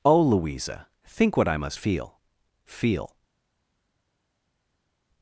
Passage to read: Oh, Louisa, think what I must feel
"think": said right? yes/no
yes